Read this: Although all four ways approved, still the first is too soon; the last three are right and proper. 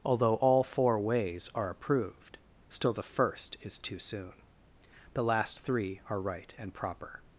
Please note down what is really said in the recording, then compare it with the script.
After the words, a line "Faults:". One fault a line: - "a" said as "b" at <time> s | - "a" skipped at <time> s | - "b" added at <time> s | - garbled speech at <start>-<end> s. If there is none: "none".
Although all four ways are approved, still the first is too soon; the last three are right and proper.
Faults:
- "are" added at 1.5 s